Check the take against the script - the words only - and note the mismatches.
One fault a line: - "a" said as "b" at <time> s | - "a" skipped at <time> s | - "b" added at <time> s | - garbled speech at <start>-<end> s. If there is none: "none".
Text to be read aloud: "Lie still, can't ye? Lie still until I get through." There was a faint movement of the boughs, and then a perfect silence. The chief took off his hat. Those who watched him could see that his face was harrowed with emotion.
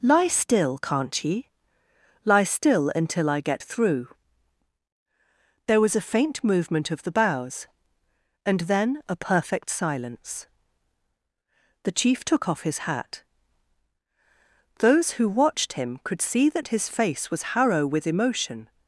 - "harrowed" said as "harrow" at 17.5 s